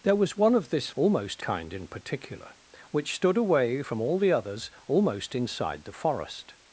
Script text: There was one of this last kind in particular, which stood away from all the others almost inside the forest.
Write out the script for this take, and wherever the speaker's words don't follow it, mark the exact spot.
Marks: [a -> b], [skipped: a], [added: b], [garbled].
There was one of this [last -> almost] kind in particular, which stood away from all the others almost inside the forest.